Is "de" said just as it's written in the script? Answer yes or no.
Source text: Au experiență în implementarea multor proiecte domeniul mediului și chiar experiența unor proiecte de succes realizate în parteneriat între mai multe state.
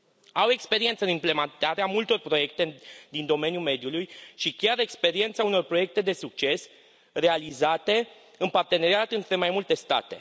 yes